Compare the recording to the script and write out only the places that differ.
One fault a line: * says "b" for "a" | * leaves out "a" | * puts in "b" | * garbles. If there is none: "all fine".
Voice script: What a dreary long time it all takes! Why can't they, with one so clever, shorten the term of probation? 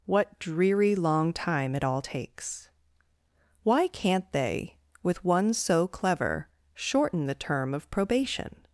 * leaves out "a"